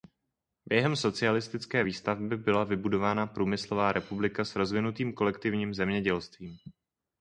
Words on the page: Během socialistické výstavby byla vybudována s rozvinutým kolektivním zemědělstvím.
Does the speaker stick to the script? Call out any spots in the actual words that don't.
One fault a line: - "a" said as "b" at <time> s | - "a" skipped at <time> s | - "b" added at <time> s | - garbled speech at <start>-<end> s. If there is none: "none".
- "průmyslová republika" added at 3.3 s